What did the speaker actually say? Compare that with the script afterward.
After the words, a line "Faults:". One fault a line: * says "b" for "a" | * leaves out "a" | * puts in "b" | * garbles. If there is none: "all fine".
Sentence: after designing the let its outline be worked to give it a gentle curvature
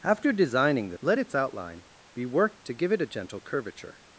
after designing the let its outline be worked to give it a gentle curvature
Faults:
all fine